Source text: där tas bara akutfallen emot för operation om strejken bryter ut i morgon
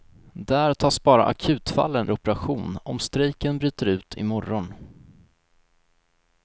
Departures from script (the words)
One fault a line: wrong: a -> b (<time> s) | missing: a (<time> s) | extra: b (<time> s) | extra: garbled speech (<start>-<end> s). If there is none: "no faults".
missing: emot för (2.1 s)